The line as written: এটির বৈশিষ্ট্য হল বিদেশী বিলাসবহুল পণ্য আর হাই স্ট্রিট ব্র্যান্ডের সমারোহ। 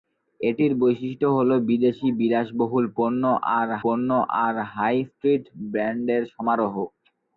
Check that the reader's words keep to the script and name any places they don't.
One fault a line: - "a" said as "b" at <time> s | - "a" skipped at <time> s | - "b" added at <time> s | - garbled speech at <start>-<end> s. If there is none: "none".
- "পণ্য আর" added at 3.8 s